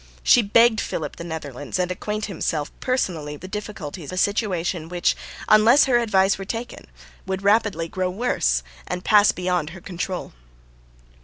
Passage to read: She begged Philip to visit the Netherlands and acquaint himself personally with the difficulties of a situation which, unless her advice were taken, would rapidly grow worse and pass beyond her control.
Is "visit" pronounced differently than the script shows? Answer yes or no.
yes